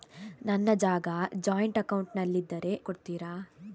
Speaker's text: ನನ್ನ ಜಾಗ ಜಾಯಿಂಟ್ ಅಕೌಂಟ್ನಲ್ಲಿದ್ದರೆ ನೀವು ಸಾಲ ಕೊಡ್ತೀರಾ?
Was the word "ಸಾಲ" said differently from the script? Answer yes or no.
yes